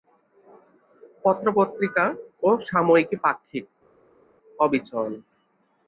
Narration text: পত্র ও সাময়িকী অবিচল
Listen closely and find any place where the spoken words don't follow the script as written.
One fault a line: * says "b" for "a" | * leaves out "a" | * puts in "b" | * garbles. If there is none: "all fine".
* puts in "পত্রিকা"
* puts in "পাক্ষিক"